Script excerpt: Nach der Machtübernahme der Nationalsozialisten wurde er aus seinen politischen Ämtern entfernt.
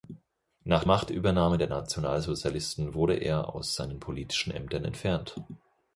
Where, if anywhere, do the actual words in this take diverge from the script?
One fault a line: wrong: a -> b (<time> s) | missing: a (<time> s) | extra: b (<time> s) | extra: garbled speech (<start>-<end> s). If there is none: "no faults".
missing: der (0.8 s)